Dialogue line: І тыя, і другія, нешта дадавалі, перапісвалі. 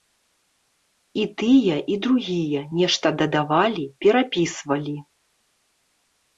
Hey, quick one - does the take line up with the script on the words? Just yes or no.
yes